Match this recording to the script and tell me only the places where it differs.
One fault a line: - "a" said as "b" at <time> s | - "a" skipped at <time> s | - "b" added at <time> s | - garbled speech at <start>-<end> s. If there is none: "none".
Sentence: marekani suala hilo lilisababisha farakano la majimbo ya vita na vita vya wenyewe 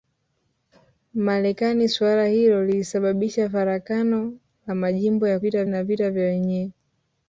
none